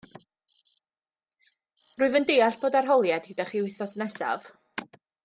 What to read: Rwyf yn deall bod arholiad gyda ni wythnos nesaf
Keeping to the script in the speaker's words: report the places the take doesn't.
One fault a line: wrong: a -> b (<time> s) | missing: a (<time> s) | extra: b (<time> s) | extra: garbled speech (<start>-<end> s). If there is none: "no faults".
wrong: ni -> chi (3.5 s)